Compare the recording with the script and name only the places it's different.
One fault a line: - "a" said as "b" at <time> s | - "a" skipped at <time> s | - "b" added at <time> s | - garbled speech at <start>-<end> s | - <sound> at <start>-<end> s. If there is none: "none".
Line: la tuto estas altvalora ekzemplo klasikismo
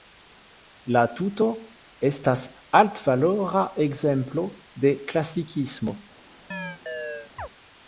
- "de" added at 4.9 s
- chirp at 6.5-7.5 s